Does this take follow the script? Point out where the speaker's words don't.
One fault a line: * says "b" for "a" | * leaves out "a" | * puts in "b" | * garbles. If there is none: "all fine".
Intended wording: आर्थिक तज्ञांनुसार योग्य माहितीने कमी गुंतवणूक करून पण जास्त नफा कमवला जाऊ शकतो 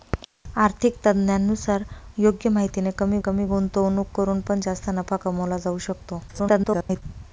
* puts in "कमी"
* garbles